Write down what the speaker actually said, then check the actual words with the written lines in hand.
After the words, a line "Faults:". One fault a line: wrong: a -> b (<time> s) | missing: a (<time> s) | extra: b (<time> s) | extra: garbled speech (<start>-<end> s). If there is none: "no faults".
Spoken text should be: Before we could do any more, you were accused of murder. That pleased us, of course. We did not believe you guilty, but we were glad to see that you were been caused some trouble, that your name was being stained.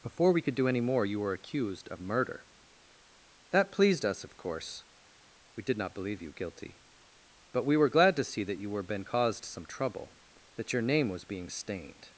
Before we could do any more, you were accused of murder. That pleased us, of course. We did not believe you guilty, but we were glad to see that you were been caused some trouble, that your name was being stained.
Faults:
no faults